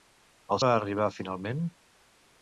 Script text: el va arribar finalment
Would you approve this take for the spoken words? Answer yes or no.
yes